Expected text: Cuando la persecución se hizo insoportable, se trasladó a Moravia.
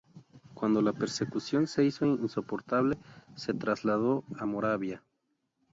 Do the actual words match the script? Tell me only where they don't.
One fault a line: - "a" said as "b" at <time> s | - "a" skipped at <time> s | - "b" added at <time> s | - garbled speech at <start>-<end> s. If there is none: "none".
none